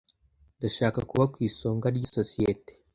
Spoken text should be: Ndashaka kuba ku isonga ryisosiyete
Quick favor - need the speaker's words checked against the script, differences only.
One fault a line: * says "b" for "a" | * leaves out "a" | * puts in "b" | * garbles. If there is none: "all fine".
all fine